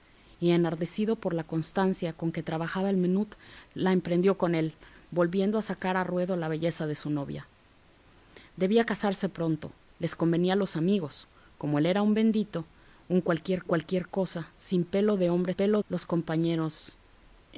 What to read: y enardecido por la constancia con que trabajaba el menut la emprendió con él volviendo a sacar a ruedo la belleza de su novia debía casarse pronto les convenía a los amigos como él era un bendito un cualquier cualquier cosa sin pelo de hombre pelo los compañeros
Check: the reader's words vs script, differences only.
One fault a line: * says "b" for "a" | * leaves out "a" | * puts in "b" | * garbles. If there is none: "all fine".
all fine